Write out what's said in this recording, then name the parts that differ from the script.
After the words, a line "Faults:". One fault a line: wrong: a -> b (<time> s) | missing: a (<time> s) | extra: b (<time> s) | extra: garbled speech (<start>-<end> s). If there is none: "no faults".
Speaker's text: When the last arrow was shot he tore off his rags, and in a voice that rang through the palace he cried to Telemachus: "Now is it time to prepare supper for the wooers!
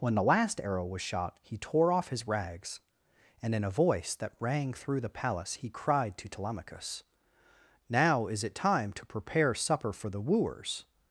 When the last arrow was shot he tore off his rags, and in a voice that rang through the palace he cried to Telemachus: "Now is it time to prepare supper for the wooers!
Faults:
no faults